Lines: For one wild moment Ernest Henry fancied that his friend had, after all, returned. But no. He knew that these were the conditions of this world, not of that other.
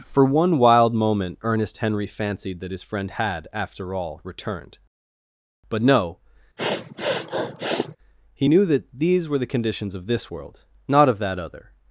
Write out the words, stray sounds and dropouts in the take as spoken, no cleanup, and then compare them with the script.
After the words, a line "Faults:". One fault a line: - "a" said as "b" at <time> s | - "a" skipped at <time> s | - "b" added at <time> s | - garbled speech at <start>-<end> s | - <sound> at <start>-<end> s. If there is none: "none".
For one wild moment Ernest Henry fancied that his friend had, after all, returned. But no. He knew that these were the conditions of this world, not of that other.
Faults:
- sniff at 6.6-8.0 s